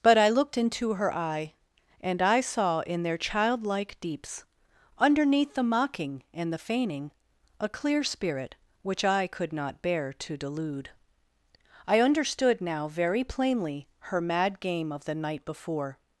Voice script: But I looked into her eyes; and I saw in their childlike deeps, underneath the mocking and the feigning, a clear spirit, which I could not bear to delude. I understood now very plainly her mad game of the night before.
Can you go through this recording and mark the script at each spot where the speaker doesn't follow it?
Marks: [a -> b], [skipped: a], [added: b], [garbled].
But I looked into her [eyes; -> eye] and I saw in their childlike deeps, underneath the mocking and the feigning, a clear spirit, which I could not bear to delude. I understood now very plainly her mad game of the night before.